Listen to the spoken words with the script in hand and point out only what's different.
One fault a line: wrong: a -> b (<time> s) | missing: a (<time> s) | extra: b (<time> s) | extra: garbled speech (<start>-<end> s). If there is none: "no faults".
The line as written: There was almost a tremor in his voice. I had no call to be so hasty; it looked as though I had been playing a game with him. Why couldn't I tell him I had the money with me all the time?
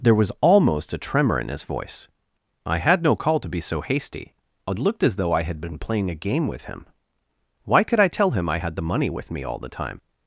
wrong: couldn't -> could (7.8 s)